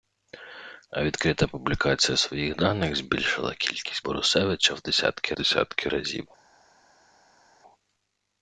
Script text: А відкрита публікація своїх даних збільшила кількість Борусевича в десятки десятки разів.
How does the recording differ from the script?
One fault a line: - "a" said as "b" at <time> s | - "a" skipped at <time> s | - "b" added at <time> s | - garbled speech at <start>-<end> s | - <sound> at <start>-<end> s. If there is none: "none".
none